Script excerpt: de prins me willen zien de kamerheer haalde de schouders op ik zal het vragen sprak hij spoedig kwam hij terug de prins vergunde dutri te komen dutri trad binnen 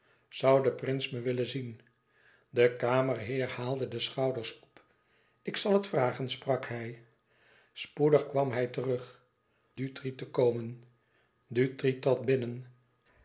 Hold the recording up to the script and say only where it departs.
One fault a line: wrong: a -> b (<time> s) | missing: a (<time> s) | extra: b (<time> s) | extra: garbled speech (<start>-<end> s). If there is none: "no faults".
missing: de prins vergunde (9.2 s)